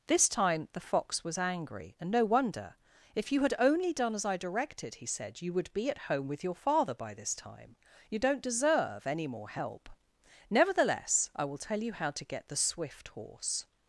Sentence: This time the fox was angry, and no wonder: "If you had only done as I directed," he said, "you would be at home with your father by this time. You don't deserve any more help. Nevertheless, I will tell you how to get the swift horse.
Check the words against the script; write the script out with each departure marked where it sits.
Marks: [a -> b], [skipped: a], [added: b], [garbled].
This time the fox was angry, and no wonder: "If you had only done as I directed," he said, "you would be at home with your father by this time. You don't deserve any more help. Nevertheless, I will tell you how to get the swift horse.